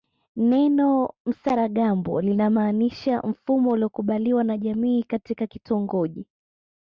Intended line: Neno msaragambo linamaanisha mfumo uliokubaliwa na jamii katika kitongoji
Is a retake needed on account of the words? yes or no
no